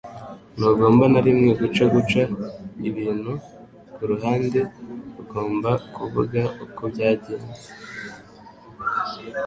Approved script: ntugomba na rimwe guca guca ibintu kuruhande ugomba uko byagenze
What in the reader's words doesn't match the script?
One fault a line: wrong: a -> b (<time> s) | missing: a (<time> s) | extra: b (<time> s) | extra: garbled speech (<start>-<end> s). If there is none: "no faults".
extra: kuvuga (5.9 s)